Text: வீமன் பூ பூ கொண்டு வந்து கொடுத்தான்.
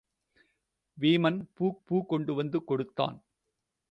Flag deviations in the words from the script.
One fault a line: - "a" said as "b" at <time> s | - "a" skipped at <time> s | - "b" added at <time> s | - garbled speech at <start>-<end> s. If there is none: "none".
none